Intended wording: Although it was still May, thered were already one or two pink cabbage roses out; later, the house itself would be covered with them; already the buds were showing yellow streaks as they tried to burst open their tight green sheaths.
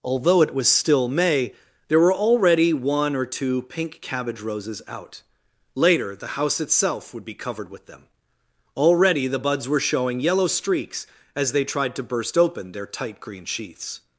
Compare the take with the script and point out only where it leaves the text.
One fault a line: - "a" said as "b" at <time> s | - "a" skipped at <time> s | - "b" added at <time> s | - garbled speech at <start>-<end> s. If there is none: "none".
- "thered" said as "there" at 1.9 s